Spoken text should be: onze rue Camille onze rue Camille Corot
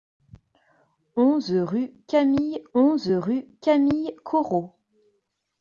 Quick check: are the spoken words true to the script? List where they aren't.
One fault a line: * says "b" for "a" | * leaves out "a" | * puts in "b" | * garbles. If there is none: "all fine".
all fine